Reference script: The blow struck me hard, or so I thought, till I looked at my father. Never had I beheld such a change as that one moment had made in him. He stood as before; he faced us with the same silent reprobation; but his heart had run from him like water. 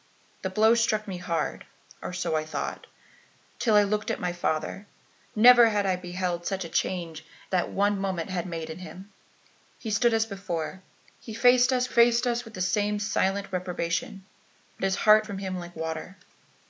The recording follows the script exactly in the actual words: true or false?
false